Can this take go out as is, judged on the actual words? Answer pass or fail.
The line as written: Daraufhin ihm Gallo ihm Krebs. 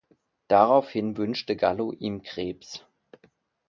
fail